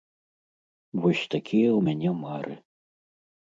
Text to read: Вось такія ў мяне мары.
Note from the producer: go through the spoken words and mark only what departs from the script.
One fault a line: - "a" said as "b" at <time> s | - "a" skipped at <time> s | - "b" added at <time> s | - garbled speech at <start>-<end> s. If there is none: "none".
none